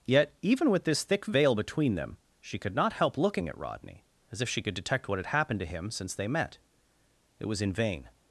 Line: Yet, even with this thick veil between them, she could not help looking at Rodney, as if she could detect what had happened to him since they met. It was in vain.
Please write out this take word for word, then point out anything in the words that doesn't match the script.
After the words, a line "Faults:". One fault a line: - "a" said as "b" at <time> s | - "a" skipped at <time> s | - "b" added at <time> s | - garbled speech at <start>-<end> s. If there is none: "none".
Yet, even with this thick veil between them, she could not help looking at Rodney, as if she could detect what had happened to him since they met. It was in vain.
Faults:
none